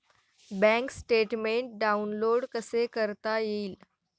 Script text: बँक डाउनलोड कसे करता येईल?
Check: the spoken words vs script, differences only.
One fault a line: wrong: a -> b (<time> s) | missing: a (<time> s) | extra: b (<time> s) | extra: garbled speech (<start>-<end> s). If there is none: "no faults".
extra: स्टेटमेन्ट (0.9 s)